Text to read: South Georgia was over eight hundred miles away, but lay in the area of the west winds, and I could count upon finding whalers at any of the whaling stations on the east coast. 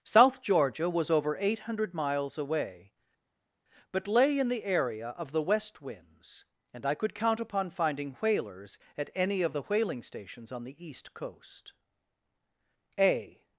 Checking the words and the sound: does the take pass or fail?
fail